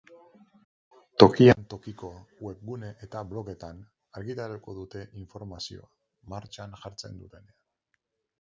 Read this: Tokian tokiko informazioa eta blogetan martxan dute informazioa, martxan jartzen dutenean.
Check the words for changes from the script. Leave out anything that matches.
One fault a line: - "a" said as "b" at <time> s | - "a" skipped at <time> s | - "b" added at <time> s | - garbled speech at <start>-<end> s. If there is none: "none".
- "informazioa" said as "webgune" at 2.5 s
- "martxan" said as "argitaratuko" at 4.2 s